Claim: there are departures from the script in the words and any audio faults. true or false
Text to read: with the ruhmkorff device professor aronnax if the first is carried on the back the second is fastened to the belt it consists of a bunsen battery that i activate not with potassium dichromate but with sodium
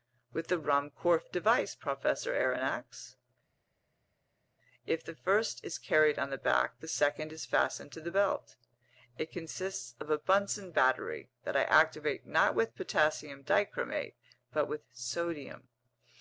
false